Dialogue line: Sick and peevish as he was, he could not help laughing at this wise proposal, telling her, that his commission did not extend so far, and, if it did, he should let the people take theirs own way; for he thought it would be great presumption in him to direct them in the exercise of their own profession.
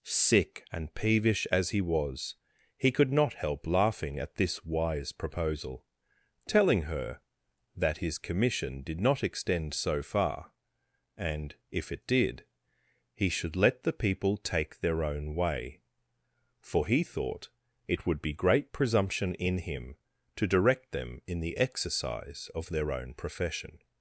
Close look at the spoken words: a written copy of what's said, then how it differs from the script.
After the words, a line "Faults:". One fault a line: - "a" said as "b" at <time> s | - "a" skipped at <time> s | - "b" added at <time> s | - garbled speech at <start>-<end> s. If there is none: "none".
Sick and peevish as he was, he could not help laughing at this wise proposal, telling her, that his commission did not extend so far, and, if it did, he should let the people take their own way; for he thought it would be great presumption in him to direct them in the exercise of their own profession.
Faults:
- "theirs" said as "their" at 14.8 s